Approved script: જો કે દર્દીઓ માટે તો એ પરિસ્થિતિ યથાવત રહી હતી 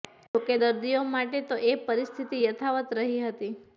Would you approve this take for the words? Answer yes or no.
yes